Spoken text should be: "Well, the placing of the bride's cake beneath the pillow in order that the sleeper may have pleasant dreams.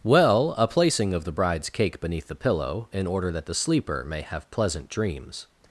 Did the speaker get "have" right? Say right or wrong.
right